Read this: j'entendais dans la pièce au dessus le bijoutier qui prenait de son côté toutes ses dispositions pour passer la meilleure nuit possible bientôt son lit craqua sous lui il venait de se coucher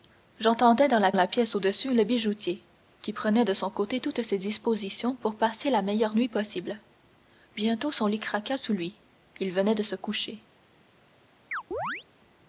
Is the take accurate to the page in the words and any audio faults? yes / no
no